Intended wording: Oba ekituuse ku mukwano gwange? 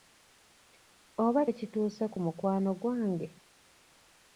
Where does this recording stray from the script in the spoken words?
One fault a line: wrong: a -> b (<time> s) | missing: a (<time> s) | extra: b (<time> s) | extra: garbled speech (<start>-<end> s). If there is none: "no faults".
no faults